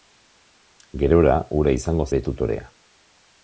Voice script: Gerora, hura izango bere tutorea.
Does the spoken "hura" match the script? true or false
true